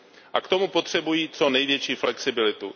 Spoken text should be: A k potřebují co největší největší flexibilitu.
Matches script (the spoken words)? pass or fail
fail